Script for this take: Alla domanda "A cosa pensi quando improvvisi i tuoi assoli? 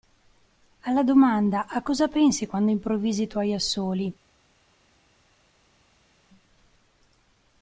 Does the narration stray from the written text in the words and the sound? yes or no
no